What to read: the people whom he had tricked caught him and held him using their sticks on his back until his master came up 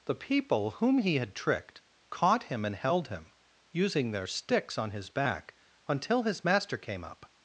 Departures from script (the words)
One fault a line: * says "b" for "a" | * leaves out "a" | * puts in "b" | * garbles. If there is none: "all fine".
all fine